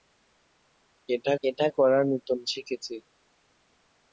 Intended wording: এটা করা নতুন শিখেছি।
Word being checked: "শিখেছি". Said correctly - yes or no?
yes